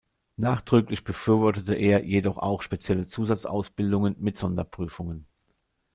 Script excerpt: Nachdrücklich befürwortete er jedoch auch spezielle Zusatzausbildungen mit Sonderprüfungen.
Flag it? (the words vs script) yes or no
no